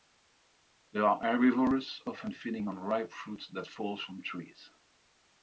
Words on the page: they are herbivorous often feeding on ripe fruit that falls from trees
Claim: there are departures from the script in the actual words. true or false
false